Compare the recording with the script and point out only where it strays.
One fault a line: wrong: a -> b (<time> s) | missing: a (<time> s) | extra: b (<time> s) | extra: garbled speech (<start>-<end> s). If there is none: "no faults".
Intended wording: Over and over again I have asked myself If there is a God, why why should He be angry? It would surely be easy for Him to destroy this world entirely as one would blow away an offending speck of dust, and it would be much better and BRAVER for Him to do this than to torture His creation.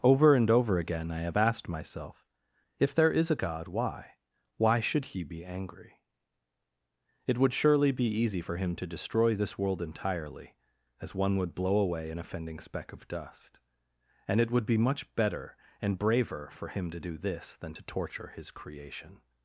no faults